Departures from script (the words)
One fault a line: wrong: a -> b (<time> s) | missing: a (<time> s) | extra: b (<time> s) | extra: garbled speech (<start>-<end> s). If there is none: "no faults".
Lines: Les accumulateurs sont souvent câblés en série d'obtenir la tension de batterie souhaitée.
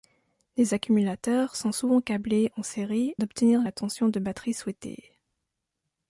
no faults